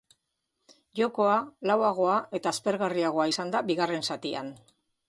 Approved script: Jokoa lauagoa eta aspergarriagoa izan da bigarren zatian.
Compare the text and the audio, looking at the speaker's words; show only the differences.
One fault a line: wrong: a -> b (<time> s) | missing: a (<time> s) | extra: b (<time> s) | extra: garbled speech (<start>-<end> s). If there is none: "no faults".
no faults